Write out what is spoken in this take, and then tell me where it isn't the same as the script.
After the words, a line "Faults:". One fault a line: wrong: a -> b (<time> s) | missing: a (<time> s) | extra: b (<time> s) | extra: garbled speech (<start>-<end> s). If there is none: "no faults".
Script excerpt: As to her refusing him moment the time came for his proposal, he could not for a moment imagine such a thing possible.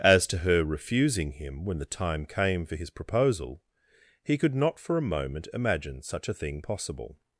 As to her refusing him when the time came for his proposal, he could not for a moment imagine such a thing possible.
Faults:
wrong: moment -> when (1.6 s)